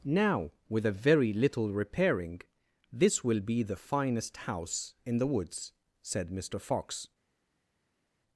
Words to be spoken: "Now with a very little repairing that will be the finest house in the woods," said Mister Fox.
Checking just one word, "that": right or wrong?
wrong